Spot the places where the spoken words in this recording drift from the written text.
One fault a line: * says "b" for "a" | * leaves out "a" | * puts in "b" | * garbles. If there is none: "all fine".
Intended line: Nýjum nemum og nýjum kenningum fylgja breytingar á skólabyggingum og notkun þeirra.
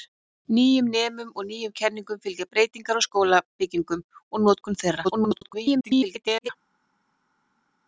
* garbles